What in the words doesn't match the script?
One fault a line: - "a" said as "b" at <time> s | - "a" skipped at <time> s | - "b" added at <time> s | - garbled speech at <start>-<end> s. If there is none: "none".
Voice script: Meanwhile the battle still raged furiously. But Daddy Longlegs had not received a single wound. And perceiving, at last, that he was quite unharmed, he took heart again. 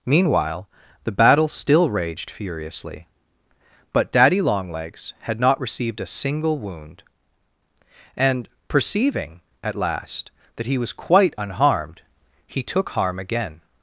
- "heart" said as "harm" at 12.9 s